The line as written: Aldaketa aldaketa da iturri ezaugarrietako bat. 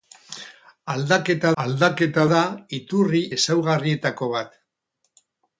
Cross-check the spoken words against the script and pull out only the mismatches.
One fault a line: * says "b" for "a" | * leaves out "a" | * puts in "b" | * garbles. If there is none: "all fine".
all fine